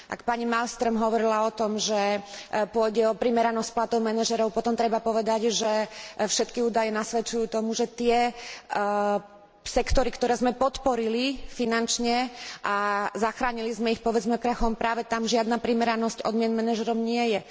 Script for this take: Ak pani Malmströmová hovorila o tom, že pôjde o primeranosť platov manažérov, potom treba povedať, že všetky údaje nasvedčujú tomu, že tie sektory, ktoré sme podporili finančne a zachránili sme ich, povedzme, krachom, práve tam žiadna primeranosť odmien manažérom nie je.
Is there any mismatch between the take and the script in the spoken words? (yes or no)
no